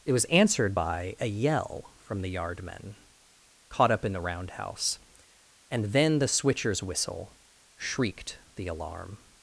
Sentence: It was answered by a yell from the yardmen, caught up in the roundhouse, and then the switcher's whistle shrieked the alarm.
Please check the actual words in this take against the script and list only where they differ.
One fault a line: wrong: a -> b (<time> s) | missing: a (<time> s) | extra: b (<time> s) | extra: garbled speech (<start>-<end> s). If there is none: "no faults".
no faults